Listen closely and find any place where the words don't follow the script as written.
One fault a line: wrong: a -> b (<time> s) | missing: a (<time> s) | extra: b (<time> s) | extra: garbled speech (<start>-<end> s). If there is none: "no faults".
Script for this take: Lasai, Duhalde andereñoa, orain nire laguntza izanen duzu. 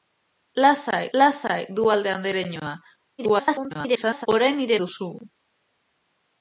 extra: lasai (1.2 s)
extra: garbled speech (3.2-4.3 s)
missing: laguntza izanen (4.8 s)